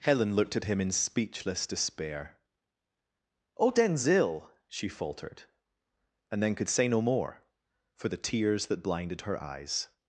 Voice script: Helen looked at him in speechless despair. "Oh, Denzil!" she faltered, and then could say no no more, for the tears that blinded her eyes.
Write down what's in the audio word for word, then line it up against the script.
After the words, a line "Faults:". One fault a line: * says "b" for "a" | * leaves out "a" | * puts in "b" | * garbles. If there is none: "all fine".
Helen looked at him in speechless despair. "Oh, Denzil!" she faltered, and then could say no more, for the tears that blinded her eyes.
Faults:
* leaves out "no"